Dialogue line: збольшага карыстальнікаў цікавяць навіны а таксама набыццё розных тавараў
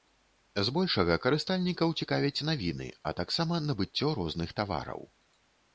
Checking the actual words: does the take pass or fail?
pass